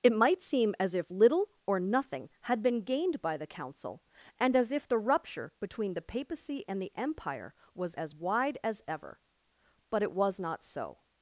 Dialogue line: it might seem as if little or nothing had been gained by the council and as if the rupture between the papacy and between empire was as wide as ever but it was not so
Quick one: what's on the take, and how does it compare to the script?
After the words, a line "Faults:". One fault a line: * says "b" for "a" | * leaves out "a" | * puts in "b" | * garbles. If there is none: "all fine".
it might seem as if little or nothing had been gained by the council and as if the rupture between the papacy and the empire was as wide as ever but it was not so
Faults:
* says "the" for "between"